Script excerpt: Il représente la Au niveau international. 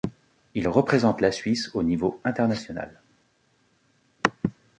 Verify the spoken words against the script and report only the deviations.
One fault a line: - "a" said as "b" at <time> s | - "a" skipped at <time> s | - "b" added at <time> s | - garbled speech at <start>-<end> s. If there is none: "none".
- "Suisse" added at 1.3 s